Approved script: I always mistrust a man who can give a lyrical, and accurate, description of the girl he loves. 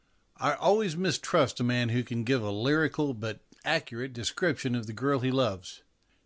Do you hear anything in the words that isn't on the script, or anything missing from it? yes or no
yes